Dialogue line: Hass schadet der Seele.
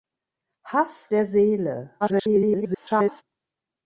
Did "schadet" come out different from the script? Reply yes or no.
yes